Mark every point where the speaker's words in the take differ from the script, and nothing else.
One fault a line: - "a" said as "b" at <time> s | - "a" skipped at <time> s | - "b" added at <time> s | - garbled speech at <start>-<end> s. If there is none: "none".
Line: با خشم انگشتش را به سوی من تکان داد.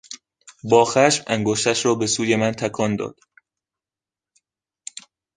none